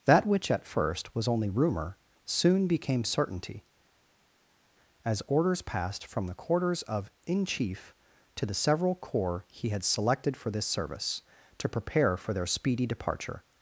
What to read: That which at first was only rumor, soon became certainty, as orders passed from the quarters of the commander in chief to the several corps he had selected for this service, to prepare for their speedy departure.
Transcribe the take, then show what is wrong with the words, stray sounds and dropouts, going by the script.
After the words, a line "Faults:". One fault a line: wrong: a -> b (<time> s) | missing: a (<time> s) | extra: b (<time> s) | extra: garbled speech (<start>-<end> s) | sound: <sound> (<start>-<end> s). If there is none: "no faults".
That which at first was only rumor, soon became certainty, as orders passed from the quarters of in chief to the several corps he had selected for this service, to prepare for their speedy departure.
Faults:
missing: the commander (7.1 s)